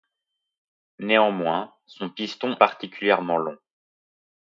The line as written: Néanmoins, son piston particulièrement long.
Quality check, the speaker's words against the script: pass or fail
pass